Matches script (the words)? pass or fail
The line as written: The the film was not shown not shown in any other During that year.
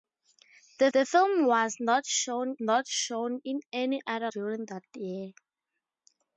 pass